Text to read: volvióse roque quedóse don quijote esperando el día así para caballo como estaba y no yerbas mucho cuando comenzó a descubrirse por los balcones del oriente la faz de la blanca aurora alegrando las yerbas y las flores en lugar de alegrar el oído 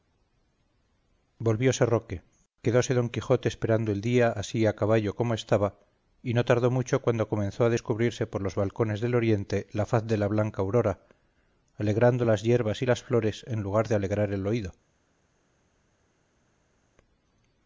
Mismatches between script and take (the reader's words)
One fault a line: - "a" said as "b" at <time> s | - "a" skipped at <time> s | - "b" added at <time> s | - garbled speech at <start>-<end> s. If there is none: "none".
- "para" said as "a" at 4.7 s
- "yerbas" said as "tardó" at 6.5 s